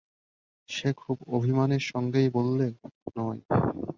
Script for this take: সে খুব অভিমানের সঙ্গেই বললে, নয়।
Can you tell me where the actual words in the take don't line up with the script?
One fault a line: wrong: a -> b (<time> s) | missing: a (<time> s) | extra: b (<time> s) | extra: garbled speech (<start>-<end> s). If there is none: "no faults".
no faults